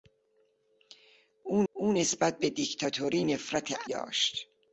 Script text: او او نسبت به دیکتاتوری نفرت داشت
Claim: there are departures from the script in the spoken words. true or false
false